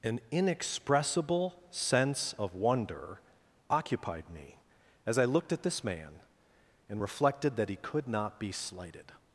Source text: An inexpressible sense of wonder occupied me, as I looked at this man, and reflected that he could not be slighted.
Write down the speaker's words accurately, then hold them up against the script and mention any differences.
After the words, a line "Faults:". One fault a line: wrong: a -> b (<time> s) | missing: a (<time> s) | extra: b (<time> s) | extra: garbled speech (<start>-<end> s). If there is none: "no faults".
An inexpressible sense of wonder occupied me, as I looked at this man, and reflected that he could not be slighted.
Faults:
no faults